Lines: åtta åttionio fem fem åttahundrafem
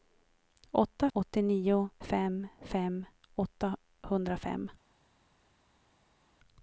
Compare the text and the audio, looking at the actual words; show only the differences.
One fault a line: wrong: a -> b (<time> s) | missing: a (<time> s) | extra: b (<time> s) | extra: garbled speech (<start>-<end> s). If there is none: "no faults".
no faults